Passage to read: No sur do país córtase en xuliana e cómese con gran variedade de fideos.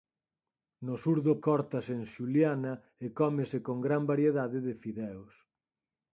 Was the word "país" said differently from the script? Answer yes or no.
yes